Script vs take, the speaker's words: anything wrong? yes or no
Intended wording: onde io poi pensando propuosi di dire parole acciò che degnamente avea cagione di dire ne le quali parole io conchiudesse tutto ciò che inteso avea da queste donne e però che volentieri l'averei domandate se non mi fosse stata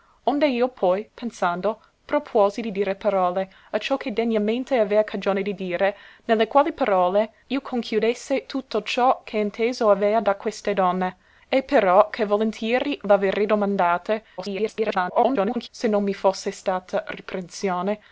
yes